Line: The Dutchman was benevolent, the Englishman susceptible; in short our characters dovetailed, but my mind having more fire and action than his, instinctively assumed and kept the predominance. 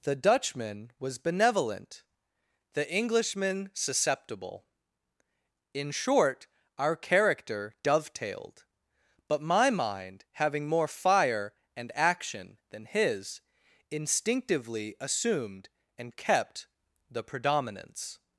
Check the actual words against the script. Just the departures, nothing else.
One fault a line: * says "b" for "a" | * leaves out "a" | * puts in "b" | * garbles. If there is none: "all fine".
* says "character" for "characters"